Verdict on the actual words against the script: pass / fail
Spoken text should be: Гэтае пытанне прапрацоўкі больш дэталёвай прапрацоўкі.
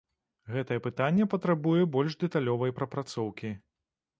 fail